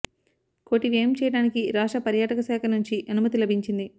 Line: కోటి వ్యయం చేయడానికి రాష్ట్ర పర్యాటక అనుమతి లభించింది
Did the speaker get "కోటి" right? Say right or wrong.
right